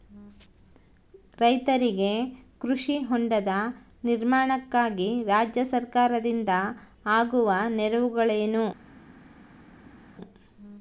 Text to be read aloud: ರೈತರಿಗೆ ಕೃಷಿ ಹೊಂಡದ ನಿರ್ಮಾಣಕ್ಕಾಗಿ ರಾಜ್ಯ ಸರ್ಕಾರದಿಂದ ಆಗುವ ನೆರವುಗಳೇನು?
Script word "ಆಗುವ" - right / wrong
right